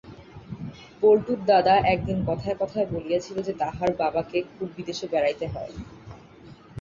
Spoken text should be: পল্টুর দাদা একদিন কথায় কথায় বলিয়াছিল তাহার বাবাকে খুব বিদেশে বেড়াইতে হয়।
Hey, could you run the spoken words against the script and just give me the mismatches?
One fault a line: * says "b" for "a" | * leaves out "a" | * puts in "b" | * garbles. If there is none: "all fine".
* puts in "যে"